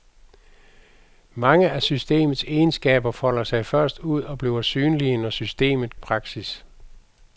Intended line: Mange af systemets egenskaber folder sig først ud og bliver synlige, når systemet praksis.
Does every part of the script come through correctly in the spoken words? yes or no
yes